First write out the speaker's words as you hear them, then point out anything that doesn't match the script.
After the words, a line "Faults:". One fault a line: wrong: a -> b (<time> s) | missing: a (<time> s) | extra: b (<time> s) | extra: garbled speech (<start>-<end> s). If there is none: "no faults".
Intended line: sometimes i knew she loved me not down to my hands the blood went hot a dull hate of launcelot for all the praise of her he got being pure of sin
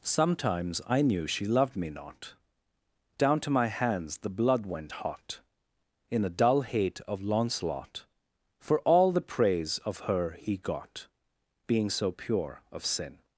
sometimes i knew she loved me not down to my hands the blood went hot in a dull hate of launcelot for all the praise of her he got being so pure of sin
Faults:
extra: in (6.1 s)
extra: so (11.9 s)